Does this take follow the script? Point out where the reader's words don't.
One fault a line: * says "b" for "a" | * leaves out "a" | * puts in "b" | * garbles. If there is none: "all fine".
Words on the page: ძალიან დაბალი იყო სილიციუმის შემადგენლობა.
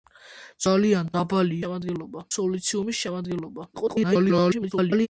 * says "შემადგენლობა" for "იყო"
* garbles